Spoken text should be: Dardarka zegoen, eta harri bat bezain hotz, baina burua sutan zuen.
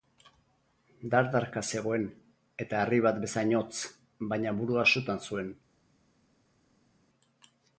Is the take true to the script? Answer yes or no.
yes